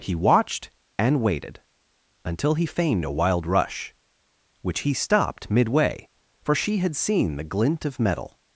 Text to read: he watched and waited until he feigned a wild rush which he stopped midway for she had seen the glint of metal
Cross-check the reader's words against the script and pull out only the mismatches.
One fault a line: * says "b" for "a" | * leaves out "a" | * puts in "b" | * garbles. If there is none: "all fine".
all fine